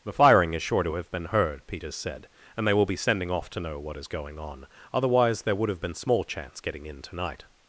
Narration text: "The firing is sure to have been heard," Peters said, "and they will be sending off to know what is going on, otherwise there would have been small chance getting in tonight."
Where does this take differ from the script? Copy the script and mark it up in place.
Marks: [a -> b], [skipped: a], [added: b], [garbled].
"The firing is sure to have been heard," Peters said, "and they will be sending off to know what is going on, otherwise there would have been small chance getting in tonight."